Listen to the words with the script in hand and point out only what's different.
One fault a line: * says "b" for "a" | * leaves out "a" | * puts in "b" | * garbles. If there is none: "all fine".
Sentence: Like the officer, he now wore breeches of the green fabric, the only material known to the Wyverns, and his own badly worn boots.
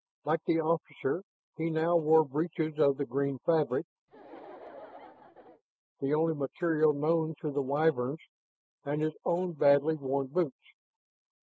all fine